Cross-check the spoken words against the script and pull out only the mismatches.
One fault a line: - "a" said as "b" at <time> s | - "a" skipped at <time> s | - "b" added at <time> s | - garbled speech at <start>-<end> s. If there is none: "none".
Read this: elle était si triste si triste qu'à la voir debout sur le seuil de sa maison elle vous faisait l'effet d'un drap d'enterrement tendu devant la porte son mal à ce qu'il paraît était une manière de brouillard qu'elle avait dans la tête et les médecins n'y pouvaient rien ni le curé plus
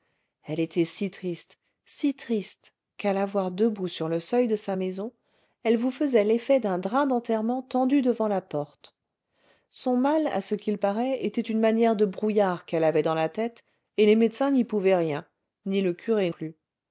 none